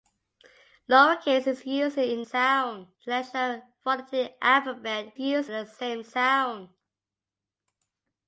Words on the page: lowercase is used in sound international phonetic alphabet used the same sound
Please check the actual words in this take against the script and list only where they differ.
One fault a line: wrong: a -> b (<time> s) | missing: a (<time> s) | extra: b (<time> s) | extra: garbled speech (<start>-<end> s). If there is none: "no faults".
no faults